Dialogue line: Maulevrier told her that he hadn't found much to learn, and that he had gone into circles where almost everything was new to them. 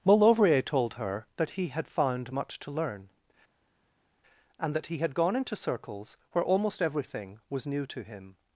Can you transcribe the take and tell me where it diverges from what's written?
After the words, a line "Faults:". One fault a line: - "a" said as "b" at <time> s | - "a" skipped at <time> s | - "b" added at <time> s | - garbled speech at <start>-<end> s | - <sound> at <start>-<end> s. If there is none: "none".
Maulevrier told her that he had found much to learn, and that he had gone into circles where almost everything was new to him.
Faults:
- "hadn't" said as "had" at 1.7 s
- "them" said as "him" at 8.0 s